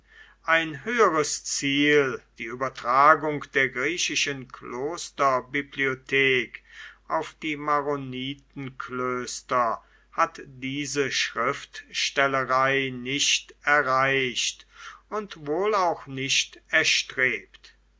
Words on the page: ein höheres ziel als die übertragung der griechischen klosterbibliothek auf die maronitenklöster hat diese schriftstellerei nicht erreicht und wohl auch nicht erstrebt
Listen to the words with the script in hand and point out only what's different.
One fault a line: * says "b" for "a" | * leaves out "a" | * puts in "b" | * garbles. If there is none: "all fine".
* leaves out "als"